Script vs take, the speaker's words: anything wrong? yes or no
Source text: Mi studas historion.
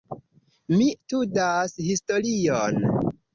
no